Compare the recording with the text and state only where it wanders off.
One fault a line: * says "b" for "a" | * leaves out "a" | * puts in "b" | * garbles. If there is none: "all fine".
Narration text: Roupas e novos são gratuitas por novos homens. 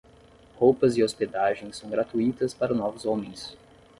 * says "hospedagem" for "novos"
* says "para" for "por"